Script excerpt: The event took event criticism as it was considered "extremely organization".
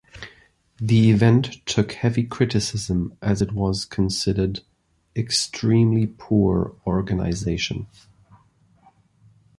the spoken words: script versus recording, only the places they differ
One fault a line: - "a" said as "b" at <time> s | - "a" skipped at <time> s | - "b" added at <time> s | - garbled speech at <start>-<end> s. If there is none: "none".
- "event" said as "heavy" at 1.9 s
- "poor" added at 6.1 s